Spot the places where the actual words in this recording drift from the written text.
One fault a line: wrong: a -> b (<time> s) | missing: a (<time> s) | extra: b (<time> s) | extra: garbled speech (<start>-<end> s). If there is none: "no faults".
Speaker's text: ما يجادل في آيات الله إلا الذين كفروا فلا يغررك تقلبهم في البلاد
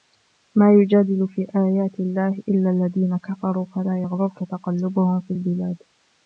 no faults